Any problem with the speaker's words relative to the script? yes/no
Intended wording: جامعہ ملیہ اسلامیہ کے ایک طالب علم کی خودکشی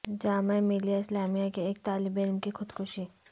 no